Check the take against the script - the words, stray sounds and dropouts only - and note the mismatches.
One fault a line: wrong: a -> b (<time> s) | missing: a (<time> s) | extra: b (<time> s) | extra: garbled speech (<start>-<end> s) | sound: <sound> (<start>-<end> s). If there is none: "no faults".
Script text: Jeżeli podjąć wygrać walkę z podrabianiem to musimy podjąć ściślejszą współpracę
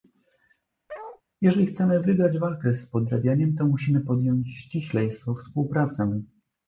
sound: bark (0.9-1.2 s)
wrong: podjąć -> chcemy (1.7 s)